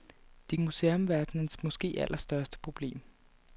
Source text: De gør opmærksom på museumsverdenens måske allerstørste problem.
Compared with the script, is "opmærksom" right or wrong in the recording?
wrong